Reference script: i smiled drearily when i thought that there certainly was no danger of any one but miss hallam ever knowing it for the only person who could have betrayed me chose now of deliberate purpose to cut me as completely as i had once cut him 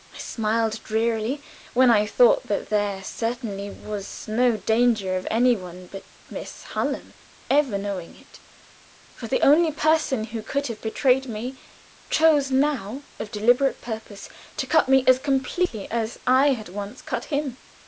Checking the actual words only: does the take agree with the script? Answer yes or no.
yes